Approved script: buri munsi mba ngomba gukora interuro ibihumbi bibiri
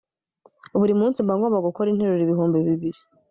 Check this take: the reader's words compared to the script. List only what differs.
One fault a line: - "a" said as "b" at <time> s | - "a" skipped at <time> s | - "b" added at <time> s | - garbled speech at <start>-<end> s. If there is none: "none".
none